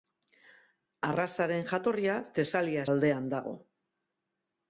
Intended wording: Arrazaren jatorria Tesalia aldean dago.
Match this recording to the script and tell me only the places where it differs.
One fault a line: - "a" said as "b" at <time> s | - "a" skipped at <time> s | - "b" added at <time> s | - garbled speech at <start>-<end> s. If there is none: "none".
none